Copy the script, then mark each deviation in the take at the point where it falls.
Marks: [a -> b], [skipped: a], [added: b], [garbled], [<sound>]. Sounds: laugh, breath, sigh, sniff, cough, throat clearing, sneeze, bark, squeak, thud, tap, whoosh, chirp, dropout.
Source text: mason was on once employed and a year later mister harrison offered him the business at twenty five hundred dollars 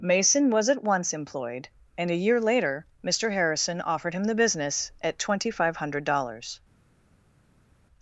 mason was [on -> at] once employed and a year later mister harrison offered him the business at twenty five hundred dollars